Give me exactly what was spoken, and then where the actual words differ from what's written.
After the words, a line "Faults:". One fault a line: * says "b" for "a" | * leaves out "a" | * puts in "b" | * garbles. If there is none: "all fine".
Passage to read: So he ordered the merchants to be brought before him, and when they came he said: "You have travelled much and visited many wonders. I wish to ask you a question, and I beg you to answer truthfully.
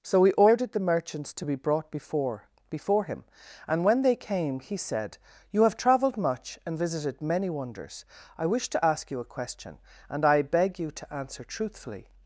So he ordered the merchants to be brought before before him, and when they came he said: "You have travelled much and visited many wonders. I wish to ask you a question, and I beg you to answer truthfully.
Faults:
* puts in "before"